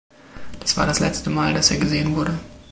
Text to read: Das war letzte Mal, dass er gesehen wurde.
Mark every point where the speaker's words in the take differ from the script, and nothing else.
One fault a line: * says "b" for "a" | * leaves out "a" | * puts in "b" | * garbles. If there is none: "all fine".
* puts in "das"